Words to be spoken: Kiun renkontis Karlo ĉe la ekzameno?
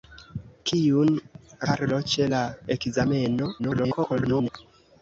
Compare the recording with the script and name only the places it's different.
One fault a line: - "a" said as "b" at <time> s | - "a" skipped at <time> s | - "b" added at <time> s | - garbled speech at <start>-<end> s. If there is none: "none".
- "renkontis" skipped at 1.1 s
- garbled speech at 3.6-4.5 s